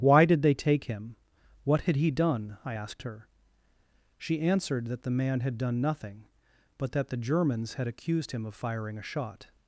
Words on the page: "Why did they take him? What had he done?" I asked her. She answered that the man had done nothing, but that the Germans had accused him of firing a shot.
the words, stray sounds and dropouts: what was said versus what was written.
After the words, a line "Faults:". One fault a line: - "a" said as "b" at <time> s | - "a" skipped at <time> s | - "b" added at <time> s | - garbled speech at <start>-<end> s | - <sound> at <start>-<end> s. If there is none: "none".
"Why did they take him? What had he done?" I asked her. She answered that the man had done nothing, but that the Germans had accused him of firing a shot.
Faults:
none